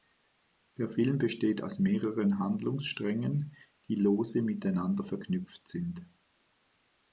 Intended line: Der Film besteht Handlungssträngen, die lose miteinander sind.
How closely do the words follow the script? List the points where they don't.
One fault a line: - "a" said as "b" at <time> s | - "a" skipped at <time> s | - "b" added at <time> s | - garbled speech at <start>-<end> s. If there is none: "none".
- "aus mehreren" added at 1.6 s
- "verknüpft" added at 5.0 s